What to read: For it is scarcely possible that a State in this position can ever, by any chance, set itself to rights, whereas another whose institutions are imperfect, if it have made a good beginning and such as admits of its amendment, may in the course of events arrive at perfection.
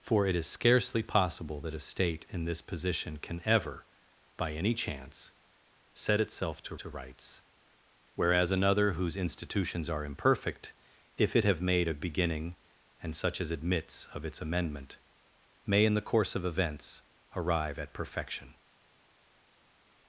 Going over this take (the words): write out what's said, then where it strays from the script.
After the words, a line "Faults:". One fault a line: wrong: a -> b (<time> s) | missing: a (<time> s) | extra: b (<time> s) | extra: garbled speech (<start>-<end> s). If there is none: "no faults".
For it is scarcely possible that a State in this position can ever, by any chance, set itself to to rights, whereas another whose institutions are imperfect, if it have made a beginning and such as admits of its amendment, may in the course of events arrive at perfection.
Faults:
extra: to (6.8 s)
missing: good (12.0 s)